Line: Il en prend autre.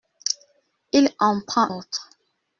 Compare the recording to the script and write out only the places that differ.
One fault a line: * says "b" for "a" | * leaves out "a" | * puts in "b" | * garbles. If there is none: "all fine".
all fine